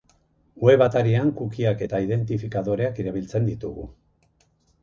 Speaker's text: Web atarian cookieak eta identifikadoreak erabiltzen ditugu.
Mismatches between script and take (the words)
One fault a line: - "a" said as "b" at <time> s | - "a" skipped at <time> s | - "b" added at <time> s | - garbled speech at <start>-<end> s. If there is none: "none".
none